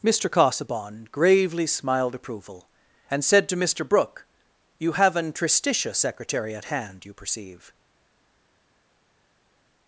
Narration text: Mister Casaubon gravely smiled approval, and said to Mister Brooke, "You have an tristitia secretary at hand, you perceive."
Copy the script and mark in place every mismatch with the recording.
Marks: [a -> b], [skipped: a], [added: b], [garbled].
Mister Casaubon gravely smiled approval, and said to Mister Brooke, "You have an tristitia secretary at hand, you perceive."